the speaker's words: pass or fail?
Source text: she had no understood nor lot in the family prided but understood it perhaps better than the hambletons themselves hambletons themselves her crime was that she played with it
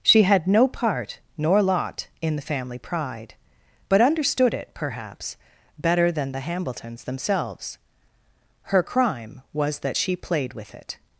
fail